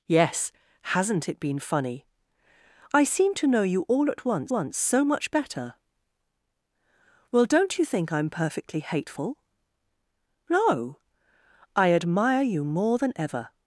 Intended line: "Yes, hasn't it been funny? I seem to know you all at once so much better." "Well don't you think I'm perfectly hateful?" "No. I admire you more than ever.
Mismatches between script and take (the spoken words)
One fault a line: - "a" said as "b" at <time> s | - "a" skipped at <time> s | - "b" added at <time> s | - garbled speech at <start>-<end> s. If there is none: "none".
- "once" added at 4.5 s